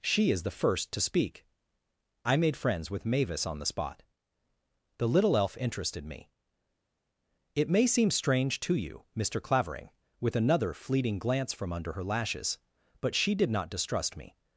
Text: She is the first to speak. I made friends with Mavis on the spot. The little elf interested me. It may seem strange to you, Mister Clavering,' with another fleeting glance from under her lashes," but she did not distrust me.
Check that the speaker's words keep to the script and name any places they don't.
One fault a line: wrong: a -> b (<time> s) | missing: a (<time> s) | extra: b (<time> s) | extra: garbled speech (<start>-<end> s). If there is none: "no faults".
no faults